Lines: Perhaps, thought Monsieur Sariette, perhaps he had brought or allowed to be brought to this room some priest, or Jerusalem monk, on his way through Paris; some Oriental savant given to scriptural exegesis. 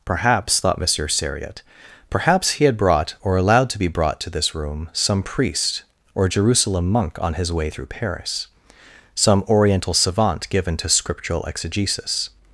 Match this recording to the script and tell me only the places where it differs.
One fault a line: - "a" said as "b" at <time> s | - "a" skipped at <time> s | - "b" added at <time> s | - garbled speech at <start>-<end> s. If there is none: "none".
none